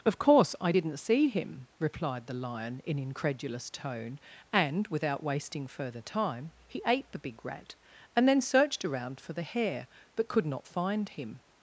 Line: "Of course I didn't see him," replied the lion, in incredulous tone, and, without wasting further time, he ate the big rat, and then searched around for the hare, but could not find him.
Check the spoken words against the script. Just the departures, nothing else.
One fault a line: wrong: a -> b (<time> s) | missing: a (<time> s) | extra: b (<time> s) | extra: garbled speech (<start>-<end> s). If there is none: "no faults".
no faults